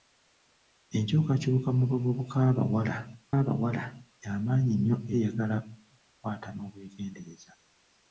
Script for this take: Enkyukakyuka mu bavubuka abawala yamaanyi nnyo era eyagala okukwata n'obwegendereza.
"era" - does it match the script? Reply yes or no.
no